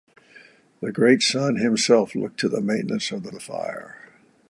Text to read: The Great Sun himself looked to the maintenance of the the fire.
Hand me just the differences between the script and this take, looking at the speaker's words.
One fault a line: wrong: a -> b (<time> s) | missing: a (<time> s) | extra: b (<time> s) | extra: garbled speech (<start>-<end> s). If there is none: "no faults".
no faults